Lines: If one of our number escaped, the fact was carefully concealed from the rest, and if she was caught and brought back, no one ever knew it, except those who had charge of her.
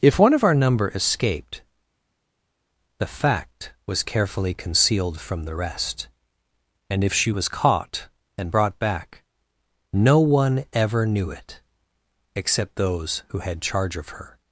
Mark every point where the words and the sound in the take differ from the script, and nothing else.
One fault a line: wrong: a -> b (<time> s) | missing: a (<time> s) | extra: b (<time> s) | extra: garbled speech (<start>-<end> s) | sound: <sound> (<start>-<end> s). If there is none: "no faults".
no faults